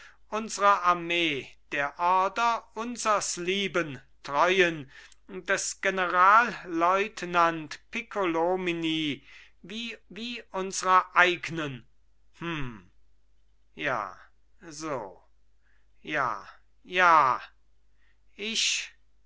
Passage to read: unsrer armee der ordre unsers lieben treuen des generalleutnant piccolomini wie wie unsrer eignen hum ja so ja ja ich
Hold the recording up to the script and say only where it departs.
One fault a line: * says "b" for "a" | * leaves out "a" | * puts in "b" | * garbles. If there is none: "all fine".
all fine